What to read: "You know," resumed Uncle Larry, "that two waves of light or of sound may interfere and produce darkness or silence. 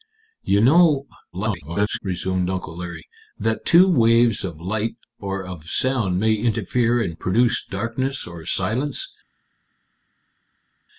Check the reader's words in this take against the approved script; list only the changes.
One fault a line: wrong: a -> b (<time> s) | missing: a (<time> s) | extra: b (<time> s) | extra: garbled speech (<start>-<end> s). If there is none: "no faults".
extra: garbled speech (1.3-2.0 s)